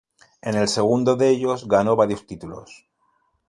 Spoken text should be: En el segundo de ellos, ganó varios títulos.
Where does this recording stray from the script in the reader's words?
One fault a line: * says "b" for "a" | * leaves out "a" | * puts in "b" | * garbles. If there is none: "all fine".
all fine